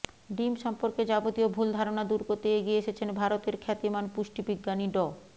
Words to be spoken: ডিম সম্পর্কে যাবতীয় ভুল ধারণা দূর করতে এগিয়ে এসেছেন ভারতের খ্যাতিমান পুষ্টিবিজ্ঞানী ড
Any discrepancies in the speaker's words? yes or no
no